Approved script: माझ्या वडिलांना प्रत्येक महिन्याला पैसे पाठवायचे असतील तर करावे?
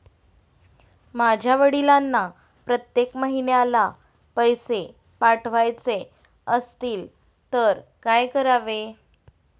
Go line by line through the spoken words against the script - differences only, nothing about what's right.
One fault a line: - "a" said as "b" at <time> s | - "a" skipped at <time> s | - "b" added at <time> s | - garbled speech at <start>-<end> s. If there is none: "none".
- "काय" added at 8.0 s